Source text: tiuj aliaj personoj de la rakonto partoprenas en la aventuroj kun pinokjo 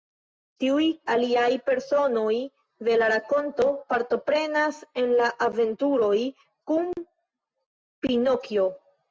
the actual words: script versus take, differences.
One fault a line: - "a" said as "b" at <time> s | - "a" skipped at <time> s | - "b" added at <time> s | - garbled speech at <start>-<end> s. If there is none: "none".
none